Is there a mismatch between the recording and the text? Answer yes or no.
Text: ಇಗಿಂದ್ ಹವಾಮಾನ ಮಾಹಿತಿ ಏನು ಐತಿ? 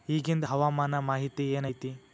no